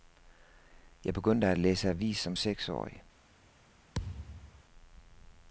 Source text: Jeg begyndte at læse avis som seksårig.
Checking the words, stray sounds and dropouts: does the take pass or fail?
fail